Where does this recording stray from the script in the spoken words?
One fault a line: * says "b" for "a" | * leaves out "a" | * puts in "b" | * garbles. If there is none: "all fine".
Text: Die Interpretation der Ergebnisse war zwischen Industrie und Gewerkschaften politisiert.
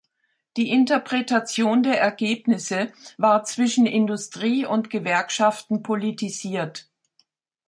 all fine